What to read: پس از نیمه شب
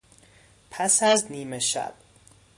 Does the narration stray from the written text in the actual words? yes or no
no